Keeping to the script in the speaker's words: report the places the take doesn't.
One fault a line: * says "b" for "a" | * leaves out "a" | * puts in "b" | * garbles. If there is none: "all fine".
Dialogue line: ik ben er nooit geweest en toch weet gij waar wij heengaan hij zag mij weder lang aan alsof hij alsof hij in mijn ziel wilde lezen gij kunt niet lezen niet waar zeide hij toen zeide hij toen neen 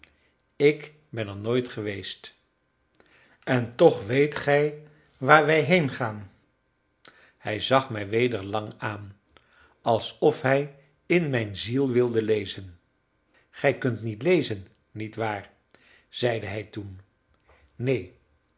* leaves out "alsof hij"
* leaves out "zeide hij toen"